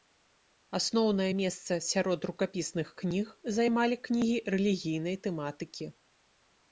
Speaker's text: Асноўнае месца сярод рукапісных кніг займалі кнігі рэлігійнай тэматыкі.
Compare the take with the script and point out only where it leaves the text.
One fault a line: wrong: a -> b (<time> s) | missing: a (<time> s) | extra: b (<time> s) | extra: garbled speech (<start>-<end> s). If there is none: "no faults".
no faults